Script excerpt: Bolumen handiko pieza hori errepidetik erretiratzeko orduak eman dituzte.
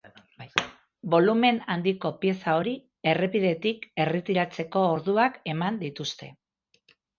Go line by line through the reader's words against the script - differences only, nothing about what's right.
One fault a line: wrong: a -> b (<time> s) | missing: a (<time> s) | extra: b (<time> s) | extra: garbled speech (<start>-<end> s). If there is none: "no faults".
no faults